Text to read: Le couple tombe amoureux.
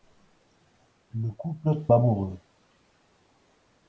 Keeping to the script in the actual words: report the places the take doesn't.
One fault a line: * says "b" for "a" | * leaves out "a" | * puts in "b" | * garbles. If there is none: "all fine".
* leaves out "tombe"